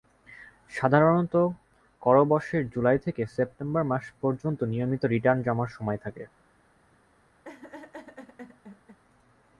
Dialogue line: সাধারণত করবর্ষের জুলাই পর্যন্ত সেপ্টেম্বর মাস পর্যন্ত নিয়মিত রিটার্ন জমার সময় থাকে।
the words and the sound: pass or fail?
fail